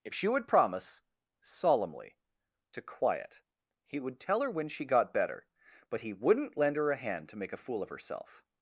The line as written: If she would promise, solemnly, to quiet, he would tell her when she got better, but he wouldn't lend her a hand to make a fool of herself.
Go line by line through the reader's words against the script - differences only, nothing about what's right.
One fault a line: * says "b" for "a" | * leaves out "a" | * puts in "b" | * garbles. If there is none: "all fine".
all fine